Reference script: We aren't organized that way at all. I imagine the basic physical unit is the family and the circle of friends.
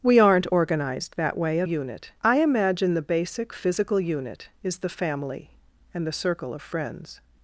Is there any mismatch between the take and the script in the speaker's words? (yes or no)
yes